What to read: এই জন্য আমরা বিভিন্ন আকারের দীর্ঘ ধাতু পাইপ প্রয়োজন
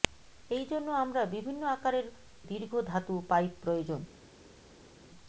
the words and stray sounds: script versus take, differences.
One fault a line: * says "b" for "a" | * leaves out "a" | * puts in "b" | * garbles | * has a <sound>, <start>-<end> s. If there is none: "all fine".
all fine